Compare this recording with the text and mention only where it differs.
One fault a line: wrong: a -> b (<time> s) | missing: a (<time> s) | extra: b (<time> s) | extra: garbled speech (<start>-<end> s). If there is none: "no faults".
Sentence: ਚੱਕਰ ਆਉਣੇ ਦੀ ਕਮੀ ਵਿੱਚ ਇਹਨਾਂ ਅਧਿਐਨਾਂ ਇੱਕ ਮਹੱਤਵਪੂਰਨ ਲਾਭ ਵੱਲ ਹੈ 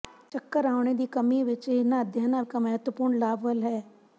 no faults